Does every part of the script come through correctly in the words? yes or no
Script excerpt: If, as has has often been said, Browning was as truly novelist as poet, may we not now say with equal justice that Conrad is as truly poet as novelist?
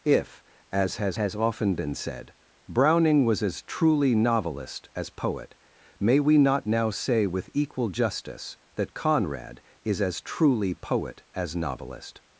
yes